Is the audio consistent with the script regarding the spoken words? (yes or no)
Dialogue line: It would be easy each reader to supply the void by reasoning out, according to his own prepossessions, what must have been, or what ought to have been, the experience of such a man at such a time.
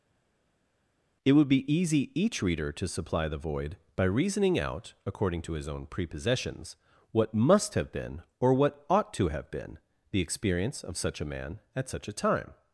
yes